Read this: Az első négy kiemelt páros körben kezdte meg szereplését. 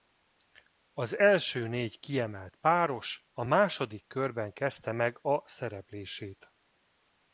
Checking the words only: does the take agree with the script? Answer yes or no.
no